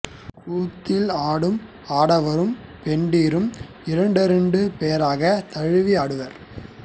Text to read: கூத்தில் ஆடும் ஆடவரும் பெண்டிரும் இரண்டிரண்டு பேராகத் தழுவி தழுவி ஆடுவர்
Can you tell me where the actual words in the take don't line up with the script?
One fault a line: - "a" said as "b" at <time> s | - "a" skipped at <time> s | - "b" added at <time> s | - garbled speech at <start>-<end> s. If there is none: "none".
- "தழுவி" skipped at 5.9 s